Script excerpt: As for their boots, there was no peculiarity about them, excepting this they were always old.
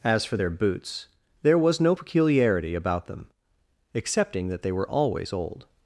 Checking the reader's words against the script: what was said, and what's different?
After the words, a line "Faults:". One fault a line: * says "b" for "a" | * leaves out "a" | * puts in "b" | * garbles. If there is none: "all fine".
As for their boots, there was no peculiarity about them, excepting that they were always old.
Faults:
* says "that" for "this"